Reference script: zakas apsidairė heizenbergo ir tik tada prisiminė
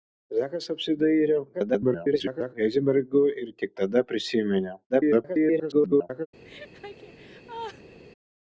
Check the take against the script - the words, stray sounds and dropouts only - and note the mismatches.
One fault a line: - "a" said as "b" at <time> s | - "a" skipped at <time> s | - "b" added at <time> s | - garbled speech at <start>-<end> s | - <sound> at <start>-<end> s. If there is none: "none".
- garbled speech at 1.5-2.5 s
- garbled speech at 4.9-6.3 s
- laugh at 6.4-8.0 s